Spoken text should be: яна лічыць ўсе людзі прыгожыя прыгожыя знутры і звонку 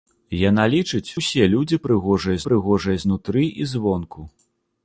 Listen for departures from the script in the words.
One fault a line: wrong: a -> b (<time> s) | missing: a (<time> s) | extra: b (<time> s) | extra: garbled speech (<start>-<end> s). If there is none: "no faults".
no faults